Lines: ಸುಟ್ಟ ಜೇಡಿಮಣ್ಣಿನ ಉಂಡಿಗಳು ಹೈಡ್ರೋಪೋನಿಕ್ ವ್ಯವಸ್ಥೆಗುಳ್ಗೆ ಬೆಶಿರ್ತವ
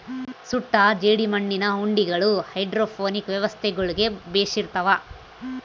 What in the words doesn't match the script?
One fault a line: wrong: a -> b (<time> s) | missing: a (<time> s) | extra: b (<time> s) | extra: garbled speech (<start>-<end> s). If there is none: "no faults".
no faults